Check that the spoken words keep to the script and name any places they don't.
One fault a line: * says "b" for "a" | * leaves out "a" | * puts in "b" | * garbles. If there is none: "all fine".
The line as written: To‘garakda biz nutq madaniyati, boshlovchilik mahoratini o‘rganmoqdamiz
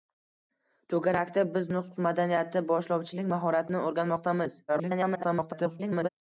* garbles